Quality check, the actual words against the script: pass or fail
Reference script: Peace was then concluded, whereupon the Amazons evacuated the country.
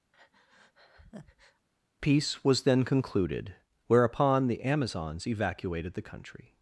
pass